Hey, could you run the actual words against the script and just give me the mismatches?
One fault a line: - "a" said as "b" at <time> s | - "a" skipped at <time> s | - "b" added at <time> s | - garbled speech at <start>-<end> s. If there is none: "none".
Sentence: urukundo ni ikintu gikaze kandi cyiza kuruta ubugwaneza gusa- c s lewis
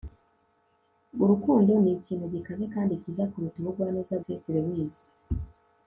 - "gusa" skipped at 4.2 s